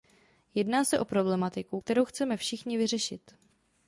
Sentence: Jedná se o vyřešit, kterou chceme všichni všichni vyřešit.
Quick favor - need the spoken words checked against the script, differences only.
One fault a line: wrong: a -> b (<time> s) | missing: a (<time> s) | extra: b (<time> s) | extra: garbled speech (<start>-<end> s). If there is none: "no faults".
wrong: vyřešit -> problematiku (1.1 s)
missing: všichni (2.8 s)